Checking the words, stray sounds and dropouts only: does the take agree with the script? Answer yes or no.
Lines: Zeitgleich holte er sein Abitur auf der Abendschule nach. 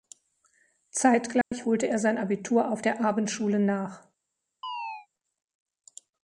no